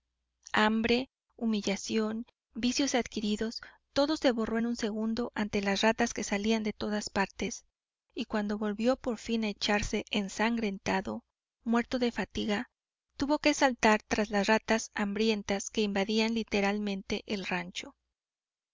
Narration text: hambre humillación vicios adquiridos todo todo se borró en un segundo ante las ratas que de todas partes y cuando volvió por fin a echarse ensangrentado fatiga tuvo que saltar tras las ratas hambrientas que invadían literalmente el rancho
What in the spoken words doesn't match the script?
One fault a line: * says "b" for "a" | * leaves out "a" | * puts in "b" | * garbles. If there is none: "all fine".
* leaves out "todo"
* puts in "salían"
* puts in "muerto de"